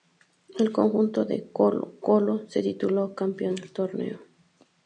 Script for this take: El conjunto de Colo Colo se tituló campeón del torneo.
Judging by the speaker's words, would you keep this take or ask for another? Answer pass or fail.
pass